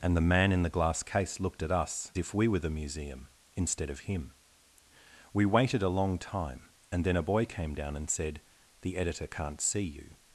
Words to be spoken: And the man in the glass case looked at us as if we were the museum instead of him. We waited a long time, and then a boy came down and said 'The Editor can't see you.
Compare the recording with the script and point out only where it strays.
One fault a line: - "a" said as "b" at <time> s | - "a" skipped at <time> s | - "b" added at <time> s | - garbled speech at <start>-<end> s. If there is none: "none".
- "as" skipped at 2.1 s